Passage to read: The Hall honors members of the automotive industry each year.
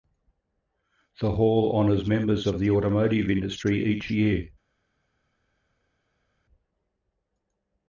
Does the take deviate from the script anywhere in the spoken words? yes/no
no